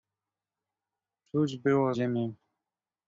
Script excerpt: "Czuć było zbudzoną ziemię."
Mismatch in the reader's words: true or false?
true